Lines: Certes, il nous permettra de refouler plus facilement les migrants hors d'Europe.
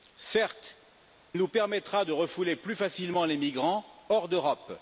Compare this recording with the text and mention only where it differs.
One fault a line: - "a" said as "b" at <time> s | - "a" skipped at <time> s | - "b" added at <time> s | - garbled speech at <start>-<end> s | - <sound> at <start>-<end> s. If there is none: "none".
- "il" skipped at 0.8 s